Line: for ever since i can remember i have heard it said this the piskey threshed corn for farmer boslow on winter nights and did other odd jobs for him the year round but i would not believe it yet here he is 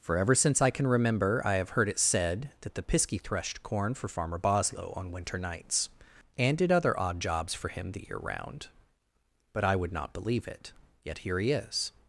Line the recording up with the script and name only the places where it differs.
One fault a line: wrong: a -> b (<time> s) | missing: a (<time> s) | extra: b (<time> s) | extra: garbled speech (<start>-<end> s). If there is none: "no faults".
wrong: this -> that (2.6 s)